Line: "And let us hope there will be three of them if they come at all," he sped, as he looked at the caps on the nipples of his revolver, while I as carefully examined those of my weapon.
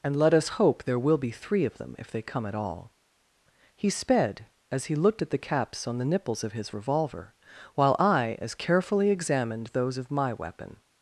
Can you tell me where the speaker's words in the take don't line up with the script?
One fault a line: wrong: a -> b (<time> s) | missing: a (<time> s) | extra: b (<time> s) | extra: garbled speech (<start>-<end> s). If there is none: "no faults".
no faults